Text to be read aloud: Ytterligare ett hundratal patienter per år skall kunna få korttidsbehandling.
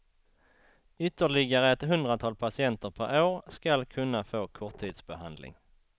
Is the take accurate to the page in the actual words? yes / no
yes